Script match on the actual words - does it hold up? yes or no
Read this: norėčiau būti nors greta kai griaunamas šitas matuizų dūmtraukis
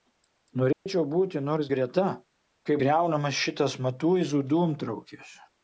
yes